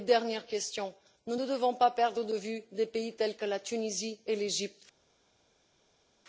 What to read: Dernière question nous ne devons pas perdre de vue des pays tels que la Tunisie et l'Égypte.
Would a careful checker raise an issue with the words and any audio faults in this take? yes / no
no